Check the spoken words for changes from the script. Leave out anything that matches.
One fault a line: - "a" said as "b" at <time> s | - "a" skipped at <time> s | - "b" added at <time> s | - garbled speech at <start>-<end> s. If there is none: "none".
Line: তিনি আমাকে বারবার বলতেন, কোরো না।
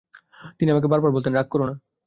- "রাগ" added at 1.3 s